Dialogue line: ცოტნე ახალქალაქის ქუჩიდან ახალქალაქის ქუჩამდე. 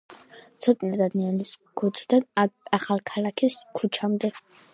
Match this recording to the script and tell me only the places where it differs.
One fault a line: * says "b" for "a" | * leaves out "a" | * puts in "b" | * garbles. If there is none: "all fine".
* says "დადიანის" for "ახალქალაქის"